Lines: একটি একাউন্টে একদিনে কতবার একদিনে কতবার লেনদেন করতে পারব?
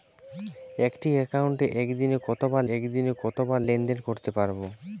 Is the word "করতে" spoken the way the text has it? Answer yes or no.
yes